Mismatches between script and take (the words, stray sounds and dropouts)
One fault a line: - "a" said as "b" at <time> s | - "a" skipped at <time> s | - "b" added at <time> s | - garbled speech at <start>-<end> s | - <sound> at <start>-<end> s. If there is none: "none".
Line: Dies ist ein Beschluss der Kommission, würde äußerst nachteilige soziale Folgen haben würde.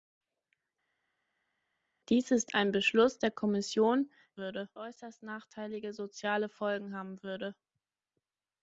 none